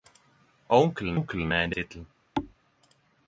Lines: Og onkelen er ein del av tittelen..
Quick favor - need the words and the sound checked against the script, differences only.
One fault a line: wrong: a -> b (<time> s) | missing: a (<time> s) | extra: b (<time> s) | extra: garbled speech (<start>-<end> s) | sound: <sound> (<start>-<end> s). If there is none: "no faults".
extra: onkelen (1.2 s)
missing: del (1.8 s)
sound: thud (2.4-2.6 s)